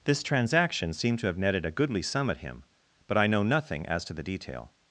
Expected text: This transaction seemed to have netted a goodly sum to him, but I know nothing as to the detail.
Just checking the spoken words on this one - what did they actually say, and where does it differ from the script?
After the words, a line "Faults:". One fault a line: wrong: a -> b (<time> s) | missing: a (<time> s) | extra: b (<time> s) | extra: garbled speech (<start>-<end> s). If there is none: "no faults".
This transaction seemed to have netted a goodly sum at him, but I know nothing as to the detail.
Faults:
wrong: to -> at (2.3 s)